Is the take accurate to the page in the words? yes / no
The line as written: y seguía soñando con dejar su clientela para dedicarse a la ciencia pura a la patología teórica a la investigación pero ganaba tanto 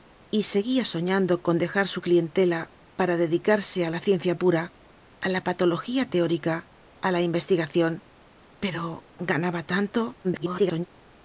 no